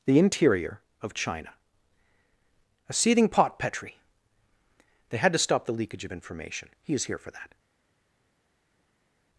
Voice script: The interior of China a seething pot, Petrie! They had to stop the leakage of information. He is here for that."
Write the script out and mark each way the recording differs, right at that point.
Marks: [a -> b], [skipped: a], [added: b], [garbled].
The interior of China a seething pot, Petrie! They had to stop the leakage of information. He is here for that."